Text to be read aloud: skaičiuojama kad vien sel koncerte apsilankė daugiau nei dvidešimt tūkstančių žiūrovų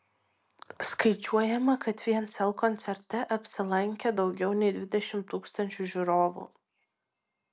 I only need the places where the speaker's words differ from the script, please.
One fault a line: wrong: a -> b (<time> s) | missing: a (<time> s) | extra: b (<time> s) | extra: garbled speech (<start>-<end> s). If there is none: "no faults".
no faults